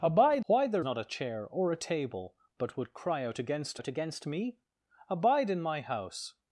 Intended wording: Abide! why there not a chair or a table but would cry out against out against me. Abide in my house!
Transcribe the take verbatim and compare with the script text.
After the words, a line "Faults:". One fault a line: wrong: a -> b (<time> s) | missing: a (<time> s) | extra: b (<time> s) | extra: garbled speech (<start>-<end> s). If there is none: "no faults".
Abide! why there not a chair or a table but would cry out against out against me. Abide in my house!
Faults:
no faults